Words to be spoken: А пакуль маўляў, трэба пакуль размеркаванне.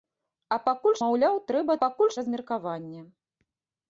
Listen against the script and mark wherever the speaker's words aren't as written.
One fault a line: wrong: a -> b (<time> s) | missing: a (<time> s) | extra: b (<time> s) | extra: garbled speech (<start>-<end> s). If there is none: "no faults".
no faults